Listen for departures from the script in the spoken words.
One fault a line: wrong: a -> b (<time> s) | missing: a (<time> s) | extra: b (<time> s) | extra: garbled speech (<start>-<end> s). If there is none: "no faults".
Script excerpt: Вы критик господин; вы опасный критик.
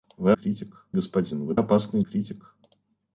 no faults